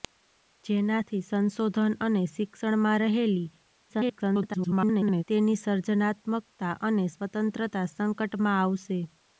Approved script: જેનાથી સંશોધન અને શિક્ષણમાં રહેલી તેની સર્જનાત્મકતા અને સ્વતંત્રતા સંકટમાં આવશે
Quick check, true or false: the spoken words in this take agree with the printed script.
false